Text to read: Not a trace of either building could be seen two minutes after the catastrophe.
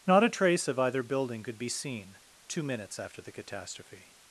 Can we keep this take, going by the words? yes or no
yes